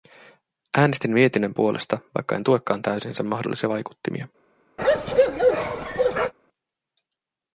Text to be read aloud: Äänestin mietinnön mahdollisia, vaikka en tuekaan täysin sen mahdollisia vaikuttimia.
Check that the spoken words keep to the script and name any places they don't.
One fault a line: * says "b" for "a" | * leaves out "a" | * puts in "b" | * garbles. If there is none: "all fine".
* says "puolesta" for "mahdollisia"